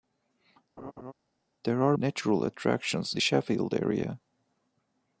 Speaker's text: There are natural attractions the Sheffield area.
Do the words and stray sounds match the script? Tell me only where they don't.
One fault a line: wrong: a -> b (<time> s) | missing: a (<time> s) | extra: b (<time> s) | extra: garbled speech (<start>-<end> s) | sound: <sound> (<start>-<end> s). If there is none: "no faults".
sound: laugh (0.8-1.1 s)